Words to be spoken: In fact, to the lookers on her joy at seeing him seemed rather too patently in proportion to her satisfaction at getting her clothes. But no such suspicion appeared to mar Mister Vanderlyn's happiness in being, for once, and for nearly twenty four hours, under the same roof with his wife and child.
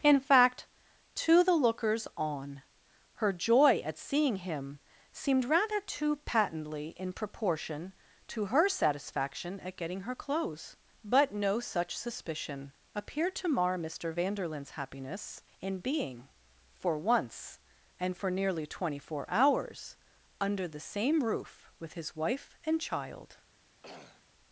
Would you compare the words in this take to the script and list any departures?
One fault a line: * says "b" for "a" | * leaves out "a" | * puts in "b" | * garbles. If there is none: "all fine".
all fine